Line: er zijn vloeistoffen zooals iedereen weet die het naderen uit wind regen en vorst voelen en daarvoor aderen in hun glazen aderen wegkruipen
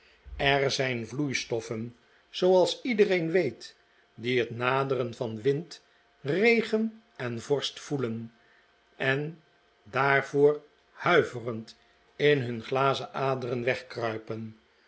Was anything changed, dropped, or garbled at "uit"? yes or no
yes